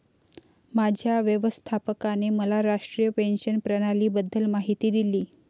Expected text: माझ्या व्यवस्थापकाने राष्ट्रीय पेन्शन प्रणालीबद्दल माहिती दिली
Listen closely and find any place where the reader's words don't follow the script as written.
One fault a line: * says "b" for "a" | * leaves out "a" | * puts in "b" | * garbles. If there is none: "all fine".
* puts in "मला"